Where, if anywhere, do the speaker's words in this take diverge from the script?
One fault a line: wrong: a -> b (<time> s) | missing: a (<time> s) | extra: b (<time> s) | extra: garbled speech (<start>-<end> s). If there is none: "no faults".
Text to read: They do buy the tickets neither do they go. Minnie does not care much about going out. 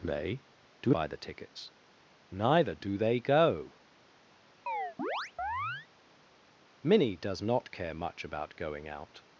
no faults